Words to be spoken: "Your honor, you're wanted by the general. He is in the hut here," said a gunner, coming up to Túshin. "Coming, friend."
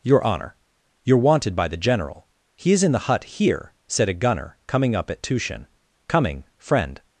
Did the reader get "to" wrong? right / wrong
wrong